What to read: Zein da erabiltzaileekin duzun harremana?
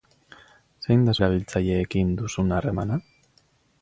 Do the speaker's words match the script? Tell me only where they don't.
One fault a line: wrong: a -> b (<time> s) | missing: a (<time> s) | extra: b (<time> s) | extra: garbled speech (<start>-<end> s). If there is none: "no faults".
no faults